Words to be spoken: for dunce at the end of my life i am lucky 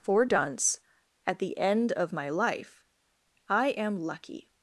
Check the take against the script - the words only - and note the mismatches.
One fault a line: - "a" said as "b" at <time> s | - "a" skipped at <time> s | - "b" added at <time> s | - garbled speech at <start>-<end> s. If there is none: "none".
none